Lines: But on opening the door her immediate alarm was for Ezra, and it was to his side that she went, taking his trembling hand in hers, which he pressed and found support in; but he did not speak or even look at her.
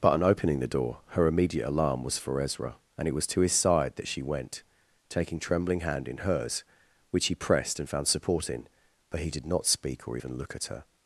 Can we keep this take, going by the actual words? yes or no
no